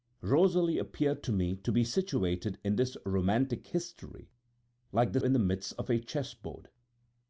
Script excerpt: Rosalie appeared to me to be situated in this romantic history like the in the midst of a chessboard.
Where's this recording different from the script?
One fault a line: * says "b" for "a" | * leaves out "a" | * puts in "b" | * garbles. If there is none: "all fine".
all fine